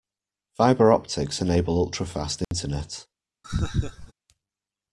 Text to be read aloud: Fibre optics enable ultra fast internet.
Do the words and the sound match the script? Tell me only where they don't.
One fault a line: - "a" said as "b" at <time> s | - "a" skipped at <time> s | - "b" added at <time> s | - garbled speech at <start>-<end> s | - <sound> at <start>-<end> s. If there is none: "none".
- dropout at 2.4-2.5 s
- laugh at 3.4-4.1 s